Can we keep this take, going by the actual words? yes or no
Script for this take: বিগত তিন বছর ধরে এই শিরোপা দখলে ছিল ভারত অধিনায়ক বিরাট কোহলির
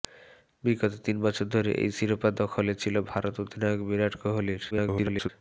no